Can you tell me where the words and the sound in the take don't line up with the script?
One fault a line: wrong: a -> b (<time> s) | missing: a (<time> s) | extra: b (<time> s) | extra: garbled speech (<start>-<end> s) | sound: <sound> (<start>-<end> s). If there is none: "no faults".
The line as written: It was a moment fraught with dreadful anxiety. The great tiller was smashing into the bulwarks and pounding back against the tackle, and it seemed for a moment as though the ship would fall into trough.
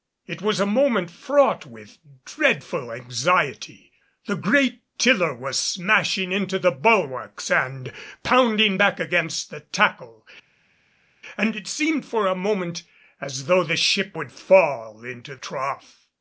no faults